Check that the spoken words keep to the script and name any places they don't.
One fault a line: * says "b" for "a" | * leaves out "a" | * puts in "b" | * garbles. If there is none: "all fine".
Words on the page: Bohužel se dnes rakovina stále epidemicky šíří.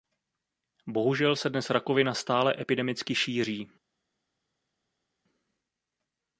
all fine